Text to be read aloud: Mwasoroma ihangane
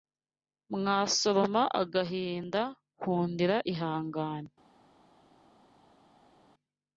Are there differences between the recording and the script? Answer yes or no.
yes